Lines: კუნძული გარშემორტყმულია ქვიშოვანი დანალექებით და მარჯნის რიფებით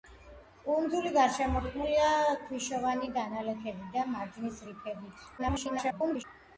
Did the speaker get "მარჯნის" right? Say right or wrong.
right